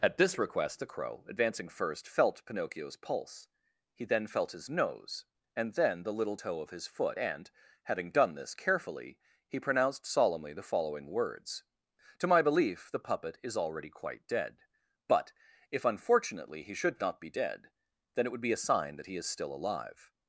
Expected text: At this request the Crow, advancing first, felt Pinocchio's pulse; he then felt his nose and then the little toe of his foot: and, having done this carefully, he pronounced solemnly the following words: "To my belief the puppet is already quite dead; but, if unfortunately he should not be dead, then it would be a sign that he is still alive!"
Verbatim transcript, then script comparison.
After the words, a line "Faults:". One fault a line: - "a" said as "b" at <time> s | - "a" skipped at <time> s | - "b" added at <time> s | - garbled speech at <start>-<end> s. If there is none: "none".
At this request the Crow, advancing first, felt Pinocchio's pulse; he then felt his nose and then the little toe of his foot: and, having done this carefully, he pronounced solemnly the following words: "To my belief the puppet is already quite dead; but, if unfortunately he should not be dead, then it would be a sign that he is still alive!"
Faults:
none